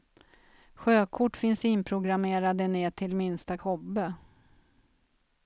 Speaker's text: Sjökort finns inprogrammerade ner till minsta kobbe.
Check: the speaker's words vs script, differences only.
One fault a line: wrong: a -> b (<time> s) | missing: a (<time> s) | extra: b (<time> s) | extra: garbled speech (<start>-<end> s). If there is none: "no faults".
no faults